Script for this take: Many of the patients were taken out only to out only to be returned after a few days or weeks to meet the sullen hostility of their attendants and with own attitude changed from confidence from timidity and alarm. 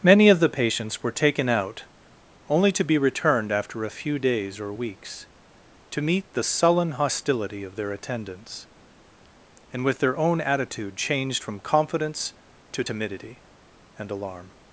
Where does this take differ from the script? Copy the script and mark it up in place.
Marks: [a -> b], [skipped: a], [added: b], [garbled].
Many of the patients were taken out only to [skipped: out only to] be returned after a few days or weeks to meet the sullen hostility of their attendants and with [added: their] own attitude changed from confidence [from -> to] timidity and alarm.